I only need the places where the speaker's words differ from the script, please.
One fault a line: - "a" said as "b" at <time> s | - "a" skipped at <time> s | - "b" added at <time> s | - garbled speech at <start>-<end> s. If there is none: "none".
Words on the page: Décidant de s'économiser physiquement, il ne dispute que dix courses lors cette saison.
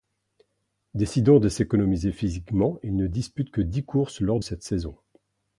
none